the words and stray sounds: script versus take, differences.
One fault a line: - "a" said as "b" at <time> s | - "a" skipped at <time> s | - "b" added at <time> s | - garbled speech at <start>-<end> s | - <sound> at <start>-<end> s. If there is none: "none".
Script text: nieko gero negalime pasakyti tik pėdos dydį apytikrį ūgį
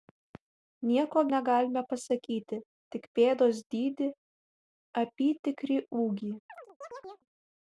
- "gero" skipped at 1.2 s
- chirp at 6.5-7.3 s